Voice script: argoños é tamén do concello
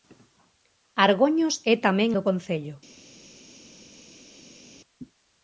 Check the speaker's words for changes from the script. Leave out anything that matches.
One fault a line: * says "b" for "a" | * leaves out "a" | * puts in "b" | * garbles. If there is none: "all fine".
all fine